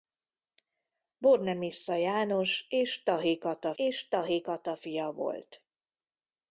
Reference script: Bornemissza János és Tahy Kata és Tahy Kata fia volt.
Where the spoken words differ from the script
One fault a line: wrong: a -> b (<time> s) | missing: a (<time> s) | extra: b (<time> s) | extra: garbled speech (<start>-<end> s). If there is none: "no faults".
no faults